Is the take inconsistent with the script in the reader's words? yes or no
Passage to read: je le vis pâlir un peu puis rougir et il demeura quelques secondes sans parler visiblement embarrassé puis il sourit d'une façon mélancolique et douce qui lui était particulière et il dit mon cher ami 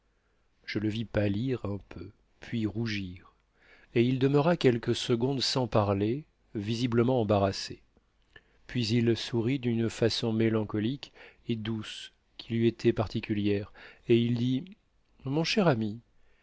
no